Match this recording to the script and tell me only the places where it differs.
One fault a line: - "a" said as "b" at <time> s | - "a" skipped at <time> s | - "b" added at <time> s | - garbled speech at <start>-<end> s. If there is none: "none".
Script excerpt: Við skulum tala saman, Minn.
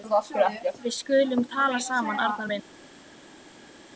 - "Arnar" added at 2.2 s